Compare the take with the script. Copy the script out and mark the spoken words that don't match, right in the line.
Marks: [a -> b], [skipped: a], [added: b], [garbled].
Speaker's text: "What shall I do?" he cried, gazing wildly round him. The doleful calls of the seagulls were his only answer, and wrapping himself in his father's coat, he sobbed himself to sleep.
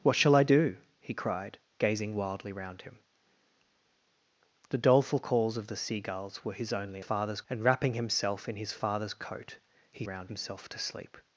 "What shall I do?" he cried, gazing wildly round him. The doleful calls of the seagulls were his only [answer, -> father's] and wrapping himself in his father's coat, he [sobbed -> round] himself to sleep.